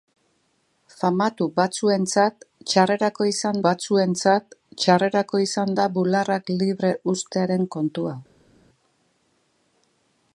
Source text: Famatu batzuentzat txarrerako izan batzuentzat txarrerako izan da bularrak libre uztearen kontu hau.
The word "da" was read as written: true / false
true